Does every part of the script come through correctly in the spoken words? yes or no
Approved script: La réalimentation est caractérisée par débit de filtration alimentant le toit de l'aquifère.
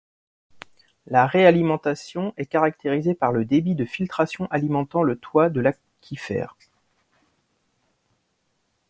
no